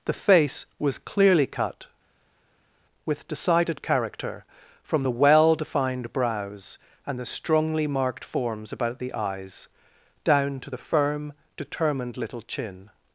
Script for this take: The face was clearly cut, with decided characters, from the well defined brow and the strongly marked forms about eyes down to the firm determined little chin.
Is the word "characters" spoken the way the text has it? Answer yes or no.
no